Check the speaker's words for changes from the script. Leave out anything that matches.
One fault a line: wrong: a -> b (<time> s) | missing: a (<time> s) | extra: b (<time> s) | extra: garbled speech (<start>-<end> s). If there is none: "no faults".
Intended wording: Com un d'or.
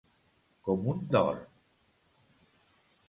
no faults